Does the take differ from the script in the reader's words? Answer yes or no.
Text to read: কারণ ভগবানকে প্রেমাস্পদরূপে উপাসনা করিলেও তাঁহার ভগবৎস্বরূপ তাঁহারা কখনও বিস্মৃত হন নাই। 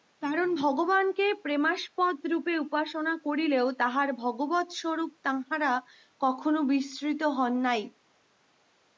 no